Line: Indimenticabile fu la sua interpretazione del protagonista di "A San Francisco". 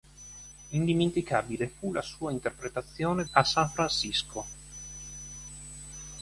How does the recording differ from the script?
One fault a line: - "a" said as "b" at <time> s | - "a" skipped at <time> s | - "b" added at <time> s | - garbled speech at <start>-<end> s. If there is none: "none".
- "del protagonista di" skipped at 3.2 s